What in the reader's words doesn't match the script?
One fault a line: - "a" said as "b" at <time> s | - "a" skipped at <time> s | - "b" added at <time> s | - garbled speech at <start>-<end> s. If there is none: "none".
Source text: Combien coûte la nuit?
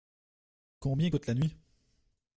none